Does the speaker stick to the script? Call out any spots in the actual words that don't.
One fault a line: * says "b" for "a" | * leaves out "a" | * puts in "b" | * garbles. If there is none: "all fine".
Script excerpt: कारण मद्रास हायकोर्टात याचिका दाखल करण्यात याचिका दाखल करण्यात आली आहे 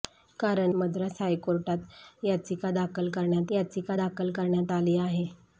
all fine